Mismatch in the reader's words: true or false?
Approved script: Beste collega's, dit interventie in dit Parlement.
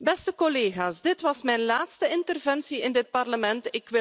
true